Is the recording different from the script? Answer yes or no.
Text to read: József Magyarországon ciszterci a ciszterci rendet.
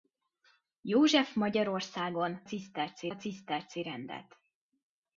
no